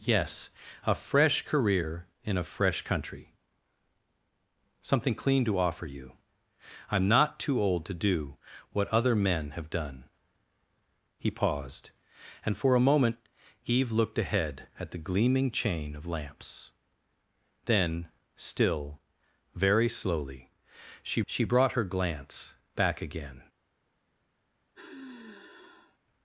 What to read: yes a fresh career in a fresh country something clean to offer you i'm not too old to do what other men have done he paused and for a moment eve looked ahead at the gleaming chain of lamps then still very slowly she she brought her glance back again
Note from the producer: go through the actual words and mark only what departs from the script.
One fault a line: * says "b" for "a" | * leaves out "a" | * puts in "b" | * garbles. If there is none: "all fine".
all fine